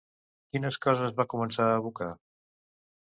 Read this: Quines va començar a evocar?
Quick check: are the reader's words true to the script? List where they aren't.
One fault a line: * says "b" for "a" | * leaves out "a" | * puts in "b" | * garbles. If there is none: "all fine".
* puts in "coses"